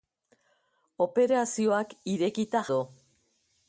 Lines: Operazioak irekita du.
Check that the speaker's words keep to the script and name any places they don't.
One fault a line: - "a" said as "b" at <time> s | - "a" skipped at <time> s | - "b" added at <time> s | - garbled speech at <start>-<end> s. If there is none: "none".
none